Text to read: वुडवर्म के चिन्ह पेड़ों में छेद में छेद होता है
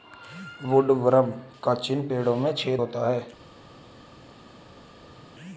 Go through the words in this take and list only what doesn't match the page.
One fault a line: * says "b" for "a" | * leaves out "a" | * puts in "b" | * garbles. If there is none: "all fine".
* says "का" for "के"
* leaves out "में छेद"